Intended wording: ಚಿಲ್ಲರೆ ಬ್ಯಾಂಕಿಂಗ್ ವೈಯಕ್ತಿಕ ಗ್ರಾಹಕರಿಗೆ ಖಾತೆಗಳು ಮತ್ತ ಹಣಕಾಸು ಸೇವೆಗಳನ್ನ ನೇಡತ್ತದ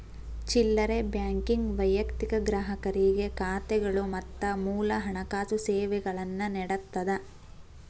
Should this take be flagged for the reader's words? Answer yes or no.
yes